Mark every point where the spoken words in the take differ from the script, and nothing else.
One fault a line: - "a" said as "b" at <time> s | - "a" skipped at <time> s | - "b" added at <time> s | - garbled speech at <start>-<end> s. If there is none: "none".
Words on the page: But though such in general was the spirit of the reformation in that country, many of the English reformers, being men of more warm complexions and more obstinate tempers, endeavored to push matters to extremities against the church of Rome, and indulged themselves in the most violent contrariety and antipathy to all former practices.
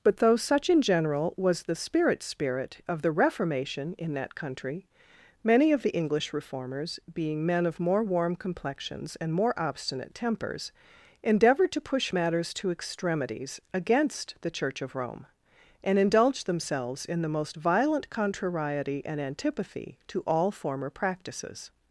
- "spirit" added at 2.2 s